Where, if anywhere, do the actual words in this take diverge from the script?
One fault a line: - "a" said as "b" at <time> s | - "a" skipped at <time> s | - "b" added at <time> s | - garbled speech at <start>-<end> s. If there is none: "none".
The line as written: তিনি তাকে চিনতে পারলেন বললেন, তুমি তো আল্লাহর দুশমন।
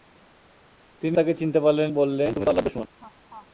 none